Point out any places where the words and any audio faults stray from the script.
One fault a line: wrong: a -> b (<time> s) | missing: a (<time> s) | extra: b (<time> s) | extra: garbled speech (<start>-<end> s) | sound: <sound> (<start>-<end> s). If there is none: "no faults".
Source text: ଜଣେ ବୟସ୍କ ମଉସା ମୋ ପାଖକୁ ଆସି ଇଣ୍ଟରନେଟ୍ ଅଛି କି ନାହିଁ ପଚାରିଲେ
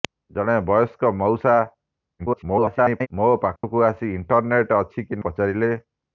extra: garbled speech (2.2-3.1 s)
sound: dropout (3.6-3.6 s)
missing: ନାହିଁ (5.2 s)